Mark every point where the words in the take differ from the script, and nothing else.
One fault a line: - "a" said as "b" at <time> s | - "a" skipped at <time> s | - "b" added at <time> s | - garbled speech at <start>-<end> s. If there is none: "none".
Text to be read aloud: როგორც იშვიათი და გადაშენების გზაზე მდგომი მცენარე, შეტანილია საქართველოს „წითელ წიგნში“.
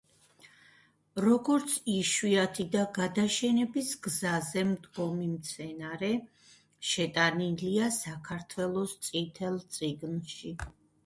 none